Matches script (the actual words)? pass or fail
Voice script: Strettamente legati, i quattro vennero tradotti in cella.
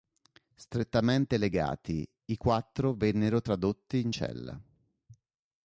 pass